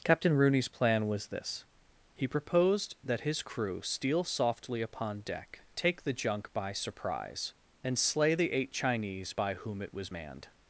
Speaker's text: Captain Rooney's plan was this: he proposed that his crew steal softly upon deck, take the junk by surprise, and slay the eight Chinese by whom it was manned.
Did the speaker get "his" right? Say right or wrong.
right